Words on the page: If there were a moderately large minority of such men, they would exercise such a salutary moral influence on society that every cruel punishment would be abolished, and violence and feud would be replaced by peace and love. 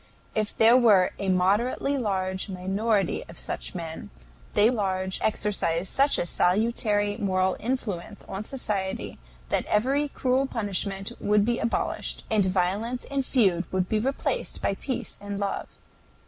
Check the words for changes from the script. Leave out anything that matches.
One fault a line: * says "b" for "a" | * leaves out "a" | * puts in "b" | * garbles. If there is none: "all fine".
* says "large" for "would"